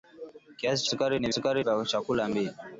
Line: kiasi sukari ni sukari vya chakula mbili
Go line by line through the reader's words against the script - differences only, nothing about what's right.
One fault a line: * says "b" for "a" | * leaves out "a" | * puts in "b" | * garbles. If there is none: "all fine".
all fine